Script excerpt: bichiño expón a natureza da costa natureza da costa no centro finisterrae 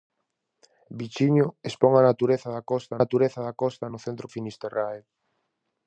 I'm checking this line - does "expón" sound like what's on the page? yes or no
yes